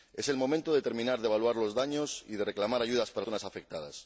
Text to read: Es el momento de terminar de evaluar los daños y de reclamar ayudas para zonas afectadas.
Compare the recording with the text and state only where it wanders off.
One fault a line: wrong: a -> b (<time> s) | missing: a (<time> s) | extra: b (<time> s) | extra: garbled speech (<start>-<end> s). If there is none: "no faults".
no faults